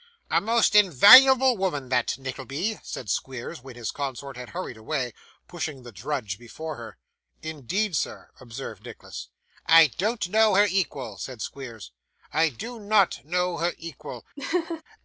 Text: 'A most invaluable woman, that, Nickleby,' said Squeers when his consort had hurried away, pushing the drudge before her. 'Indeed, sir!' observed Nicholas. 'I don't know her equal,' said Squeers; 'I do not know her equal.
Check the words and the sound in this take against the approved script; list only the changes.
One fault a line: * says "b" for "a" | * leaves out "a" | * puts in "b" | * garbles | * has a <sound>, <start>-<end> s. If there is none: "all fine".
* has a laugh, 14.4-14.8 s